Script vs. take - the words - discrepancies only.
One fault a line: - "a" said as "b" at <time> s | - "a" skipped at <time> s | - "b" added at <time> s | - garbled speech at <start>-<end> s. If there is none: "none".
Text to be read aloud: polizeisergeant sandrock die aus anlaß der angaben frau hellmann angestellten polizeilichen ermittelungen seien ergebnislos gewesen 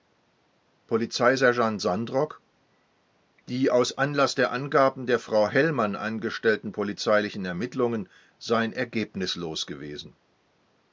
- "der" added at 5.1 s